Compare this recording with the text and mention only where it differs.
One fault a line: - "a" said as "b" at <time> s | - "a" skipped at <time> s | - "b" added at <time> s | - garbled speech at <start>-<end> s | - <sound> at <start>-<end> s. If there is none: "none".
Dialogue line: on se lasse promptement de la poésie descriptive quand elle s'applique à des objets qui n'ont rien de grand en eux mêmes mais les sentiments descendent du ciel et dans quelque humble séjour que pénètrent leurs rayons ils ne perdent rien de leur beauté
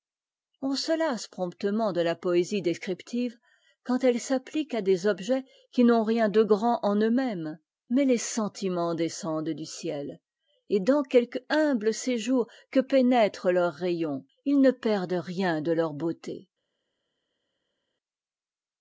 none